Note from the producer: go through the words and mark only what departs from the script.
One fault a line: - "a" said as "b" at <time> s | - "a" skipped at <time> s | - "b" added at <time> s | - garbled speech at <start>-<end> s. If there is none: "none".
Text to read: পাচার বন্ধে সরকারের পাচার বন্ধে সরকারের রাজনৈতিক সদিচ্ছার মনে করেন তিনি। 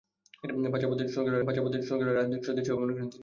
none